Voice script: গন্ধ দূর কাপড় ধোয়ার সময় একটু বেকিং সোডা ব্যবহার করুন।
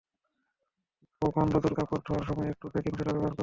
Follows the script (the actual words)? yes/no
yes